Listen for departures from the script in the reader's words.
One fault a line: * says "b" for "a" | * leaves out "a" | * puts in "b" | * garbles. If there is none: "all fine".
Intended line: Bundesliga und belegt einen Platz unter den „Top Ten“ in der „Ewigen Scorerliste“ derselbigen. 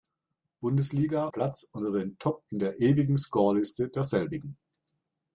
* leaves out "und belegt einen"
* leaves out "Ten"